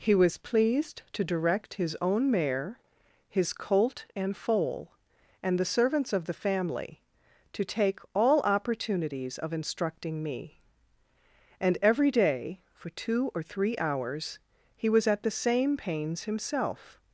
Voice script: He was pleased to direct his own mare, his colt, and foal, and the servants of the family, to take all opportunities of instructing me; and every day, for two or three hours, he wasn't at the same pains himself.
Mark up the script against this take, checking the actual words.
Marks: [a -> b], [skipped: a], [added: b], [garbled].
He was pleased to direct his own mare, his colt, and foal, and the servants of the family, to take all opportunities of instructing me; and every day, for two or three hours, he [wasn't -> was] at the same pains himself.